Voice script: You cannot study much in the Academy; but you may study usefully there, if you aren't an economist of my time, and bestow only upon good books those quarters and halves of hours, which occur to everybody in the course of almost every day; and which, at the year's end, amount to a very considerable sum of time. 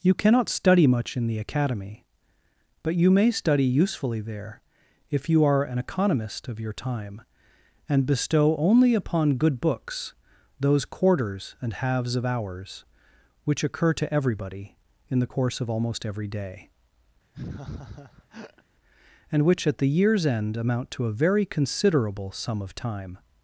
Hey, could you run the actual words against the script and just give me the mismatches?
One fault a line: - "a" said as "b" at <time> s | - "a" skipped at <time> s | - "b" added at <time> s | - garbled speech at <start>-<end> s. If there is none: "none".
- "aren't" said as "are" at 5.4 s
- "my" said as "your" at 6.6 s